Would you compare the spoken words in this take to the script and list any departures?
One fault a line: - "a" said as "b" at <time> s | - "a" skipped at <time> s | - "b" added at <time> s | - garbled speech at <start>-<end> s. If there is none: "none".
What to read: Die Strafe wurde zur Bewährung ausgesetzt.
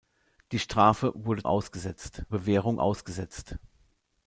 - "zur" said as "ausgesetzt" at 1.4 s